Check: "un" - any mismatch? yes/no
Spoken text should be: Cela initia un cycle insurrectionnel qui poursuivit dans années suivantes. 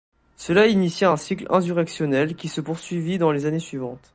no